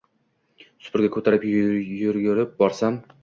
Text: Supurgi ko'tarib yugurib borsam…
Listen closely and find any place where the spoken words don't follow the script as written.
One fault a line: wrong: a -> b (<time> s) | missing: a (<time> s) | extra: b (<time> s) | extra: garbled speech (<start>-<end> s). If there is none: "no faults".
no faults